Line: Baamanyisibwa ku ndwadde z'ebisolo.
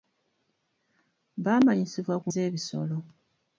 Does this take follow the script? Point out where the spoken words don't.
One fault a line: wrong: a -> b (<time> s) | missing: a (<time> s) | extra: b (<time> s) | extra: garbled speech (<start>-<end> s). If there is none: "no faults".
missing: ndwadde (2.3 s)